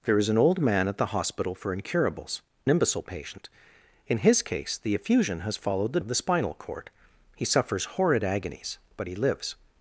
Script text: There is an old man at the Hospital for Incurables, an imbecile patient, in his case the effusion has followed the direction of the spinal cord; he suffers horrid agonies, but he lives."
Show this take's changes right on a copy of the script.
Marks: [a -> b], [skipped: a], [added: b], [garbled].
There is an old man at the Hospital for Incurables, [skipped: an] imbecile patient, in his case the effusion has followed the [skipped: direction] of the spinal cord; he suffers horrid agonies, but he lives."